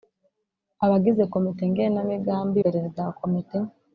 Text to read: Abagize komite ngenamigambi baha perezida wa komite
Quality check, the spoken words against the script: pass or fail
fail